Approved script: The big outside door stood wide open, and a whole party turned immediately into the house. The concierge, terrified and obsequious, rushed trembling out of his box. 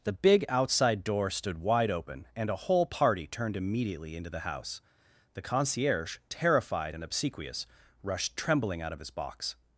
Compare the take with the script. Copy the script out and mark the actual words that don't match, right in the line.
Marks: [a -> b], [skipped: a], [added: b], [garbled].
The big outside door stood wide open, and a whole party turned immediately into the house. The concierge, terrified and obsequious, rushed trembling out of his box.